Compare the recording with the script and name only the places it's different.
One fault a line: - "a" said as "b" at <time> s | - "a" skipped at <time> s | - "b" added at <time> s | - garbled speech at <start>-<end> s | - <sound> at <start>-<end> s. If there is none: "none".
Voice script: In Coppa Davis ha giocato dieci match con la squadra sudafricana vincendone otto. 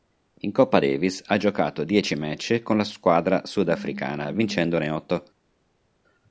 none